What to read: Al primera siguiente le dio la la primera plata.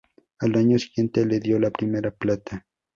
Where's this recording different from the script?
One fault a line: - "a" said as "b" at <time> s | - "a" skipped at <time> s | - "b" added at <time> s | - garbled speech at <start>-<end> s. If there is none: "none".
- "primera" said as "año" at 0.6 s
- "la" skipped at 1.7 s